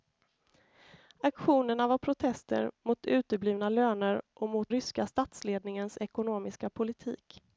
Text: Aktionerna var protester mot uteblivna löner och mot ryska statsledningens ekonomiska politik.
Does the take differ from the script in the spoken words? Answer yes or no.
no